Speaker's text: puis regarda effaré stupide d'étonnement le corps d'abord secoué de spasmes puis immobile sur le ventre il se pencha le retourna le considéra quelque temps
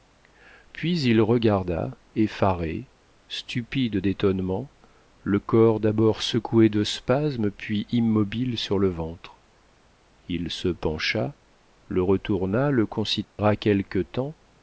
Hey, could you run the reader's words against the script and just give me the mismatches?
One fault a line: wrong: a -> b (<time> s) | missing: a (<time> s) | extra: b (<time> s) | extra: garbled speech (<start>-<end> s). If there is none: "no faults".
extra: il (1.0 s)